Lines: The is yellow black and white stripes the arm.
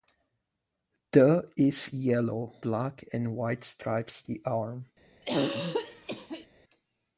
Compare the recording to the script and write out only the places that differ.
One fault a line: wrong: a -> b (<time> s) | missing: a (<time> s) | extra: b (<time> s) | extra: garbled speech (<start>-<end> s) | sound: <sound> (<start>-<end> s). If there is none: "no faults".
sound: throat clearing (5.2-6.5 s)